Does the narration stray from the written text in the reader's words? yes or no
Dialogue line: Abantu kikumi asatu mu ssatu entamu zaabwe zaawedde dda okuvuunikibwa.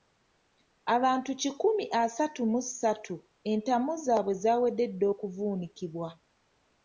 no